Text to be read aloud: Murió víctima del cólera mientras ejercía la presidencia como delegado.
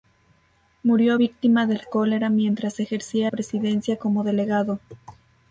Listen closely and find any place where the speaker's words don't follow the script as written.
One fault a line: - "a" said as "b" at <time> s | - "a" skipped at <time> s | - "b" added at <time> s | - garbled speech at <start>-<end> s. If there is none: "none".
- "la" skipped at 3.3 s